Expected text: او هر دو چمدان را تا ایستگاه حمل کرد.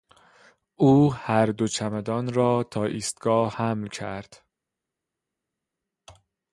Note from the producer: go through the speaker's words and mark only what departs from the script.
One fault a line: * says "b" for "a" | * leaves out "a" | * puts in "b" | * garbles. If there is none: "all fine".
all fine